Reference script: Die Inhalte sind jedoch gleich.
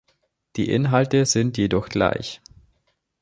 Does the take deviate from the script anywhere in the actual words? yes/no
no